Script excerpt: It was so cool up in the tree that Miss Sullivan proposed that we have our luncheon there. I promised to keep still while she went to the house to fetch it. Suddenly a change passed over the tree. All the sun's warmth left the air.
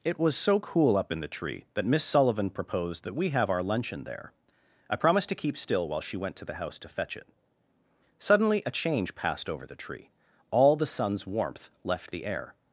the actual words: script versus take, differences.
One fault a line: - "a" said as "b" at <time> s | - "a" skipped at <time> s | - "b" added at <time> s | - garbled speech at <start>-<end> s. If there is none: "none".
none